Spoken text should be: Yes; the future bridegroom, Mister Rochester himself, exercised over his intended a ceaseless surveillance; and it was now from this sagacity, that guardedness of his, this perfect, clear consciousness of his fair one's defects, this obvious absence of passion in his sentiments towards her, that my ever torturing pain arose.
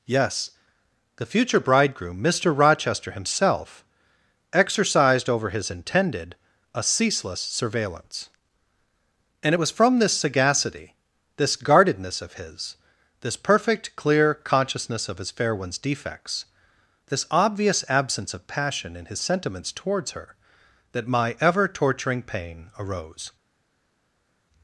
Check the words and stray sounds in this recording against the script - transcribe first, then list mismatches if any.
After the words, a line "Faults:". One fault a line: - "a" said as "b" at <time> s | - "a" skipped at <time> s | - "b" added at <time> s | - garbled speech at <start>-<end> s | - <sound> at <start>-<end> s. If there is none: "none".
Yes; the future bridegroom, Mister Rochester himself, exercised over his intended a ceaseless surveillance; and it was from this sagacity, this guardedness of his, this perfect, clear consciousness of his fair one's defects, this obvious absence of passion in his sentiments towards her, that my ever torturing pain arose.
Faults:
- "now" skipped at 9.7 s
- "that" said as "this" at 11.3 s